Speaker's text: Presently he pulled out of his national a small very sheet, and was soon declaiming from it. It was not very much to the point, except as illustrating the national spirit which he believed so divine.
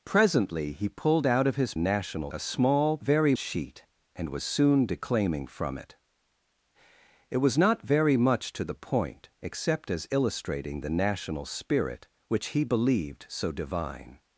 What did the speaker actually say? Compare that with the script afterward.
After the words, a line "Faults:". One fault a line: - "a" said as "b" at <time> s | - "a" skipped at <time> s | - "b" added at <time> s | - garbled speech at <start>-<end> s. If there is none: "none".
Presently he pulled out of his national a small very sheet, and was soon declaiming from it. It was not very much to the point, except as illustrating the national spirit which he believed so divine.
Faults:
none